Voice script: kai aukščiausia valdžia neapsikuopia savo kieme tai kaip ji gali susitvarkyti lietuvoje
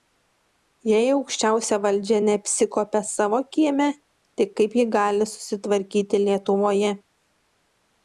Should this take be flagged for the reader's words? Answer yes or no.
yes